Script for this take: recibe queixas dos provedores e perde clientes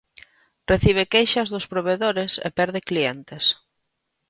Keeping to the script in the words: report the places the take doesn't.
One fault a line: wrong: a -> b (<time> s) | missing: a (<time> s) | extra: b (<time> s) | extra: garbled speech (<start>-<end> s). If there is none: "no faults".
no faults